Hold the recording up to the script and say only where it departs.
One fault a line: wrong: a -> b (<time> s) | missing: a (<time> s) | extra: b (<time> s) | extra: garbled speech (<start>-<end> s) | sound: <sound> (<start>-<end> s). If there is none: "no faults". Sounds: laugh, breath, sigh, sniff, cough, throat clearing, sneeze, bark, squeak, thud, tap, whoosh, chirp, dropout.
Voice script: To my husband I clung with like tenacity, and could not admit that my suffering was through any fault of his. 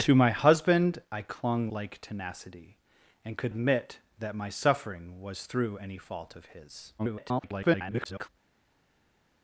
missing: with (1.7 s)
missing: not (3.5 s)
extra: garbled speech (7.0-8.3 s)